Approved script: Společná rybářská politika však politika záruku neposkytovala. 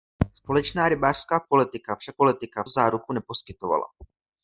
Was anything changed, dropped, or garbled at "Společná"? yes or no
no